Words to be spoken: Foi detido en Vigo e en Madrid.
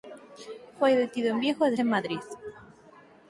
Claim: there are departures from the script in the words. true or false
false